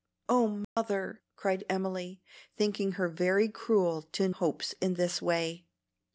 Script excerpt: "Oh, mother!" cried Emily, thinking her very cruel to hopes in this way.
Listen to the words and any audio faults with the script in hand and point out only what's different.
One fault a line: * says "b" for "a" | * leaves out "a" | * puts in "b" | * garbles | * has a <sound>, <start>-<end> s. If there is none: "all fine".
* has a dropout, 0.6-0.8 s